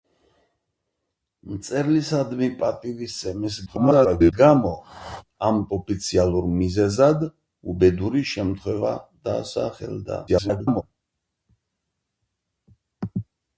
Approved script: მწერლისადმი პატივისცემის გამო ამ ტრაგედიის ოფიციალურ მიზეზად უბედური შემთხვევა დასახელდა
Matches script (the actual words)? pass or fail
fail